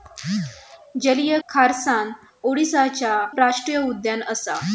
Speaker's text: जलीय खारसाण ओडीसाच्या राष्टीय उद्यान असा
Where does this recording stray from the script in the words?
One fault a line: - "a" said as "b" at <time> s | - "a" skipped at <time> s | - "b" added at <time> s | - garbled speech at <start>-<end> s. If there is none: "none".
none